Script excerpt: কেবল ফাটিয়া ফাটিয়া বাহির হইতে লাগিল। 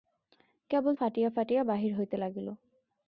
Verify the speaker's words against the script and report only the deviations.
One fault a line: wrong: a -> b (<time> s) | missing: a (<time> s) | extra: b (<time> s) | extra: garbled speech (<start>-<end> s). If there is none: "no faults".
no faults